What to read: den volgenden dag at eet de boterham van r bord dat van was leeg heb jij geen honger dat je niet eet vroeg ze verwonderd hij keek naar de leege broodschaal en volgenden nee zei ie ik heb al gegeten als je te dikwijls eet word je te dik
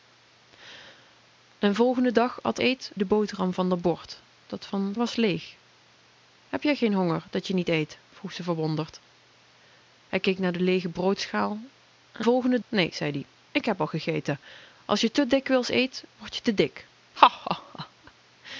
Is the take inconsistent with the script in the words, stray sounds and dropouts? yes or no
no